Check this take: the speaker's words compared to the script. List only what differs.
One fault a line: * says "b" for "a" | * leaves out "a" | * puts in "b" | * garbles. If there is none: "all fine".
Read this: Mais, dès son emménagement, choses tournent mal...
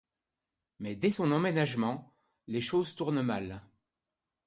* puts in "les"